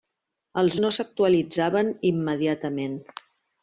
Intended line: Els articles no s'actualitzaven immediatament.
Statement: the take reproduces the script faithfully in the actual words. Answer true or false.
false